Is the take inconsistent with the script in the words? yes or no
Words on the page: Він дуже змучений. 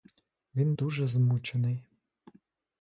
no